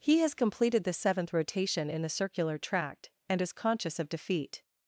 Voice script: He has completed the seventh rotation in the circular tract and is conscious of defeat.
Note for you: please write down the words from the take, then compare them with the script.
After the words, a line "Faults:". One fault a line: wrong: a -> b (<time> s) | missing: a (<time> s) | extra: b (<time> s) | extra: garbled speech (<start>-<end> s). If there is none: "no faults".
He has completed the seventh rotation in the circular tract and is conscious of defeat.
Faults:
no faults